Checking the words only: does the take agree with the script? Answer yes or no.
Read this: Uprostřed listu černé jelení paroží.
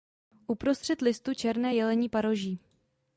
yes